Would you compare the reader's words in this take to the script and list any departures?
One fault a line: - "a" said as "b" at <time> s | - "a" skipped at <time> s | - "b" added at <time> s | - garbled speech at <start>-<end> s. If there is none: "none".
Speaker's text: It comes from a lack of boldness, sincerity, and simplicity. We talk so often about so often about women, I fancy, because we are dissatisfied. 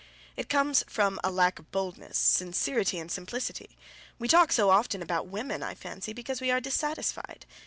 - "so often about" skipped at 5.3 s